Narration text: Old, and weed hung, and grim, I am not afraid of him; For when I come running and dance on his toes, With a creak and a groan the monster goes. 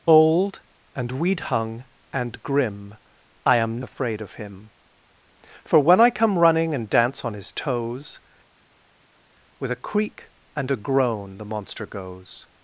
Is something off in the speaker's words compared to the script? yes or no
yes